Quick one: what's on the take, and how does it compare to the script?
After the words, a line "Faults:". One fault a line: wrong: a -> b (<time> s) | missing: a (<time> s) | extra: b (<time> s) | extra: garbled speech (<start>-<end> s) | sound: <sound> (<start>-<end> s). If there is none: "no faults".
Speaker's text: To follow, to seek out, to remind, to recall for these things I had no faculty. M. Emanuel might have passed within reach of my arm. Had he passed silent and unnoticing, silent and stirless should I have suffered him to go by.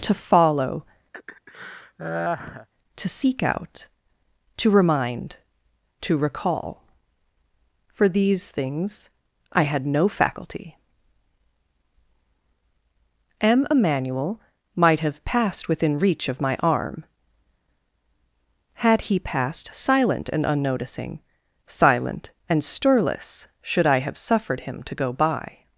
To follow, to seek out, to remind, to recall for these things I had no faculty. M. Emanuel might have passed within reach of my arm. Had he passed silent and unnoticing, silent and stirless should I have suffered him to go by.
Faults:
sound: laugh (1.1-2.7 s)